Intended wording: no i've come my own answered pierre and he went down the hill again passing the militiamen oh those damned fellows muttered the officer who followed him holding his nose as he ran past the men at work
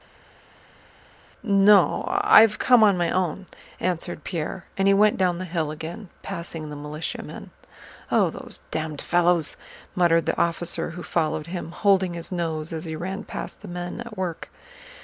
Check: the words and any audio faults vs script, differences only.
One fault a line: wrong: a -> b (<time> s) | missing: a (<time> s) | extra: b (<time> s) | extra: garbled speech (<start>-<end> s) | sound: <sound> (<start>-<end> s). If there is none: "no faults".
extra: on (2.8 s)